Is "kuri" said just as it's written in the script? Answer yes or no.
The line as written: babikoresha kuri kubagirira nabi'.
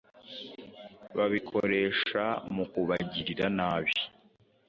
no